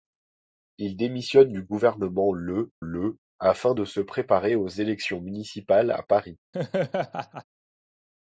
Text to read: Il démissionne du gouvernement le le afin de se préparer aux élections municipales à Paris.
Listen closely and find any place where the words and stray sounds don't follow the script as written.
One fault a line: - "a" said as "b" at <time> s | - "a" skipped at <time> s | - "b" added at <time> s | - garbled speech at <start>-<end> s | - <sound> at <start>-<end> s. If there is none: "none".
- laugh at 6.5-7.4 s